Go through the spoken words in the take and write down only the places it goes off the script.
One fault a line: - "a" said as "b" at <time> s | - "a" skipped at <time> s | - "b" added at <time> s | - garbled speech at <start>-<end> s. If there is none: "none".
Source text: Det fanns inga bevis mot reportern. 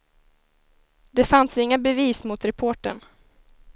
none